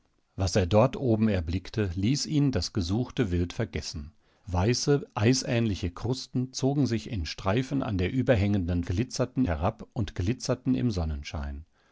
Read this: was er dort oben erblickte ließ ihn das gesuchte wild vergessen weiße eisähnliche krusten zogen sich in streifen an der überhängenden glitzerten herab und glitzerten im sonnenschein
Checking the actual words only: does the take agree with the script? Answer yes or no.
yes